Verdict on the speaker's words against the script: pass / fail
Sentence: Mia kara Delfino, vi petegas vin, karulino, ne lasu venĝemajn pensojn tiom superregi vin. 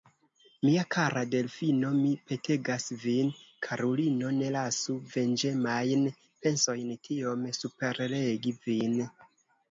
fail